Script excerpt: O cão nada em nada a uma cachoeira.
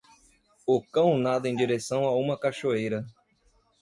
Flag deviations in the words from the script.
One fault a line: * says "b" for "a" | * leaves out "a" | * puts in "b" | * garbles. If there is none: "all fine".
* says "direção" for "nada"